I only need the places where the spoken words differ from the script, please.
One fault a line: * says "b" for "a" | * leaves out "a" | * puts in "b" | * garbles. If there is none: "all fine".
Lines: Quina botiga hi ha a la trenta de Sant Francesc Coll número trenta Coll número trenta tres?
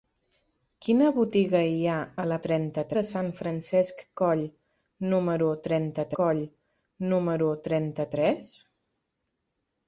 all fine